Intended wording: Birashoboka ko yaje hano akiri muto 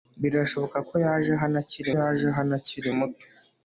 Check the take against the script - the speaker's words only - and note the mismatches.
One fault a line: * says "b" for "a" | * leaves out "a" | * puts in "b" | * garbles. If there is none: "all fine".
* puts in "yaje hano akiri"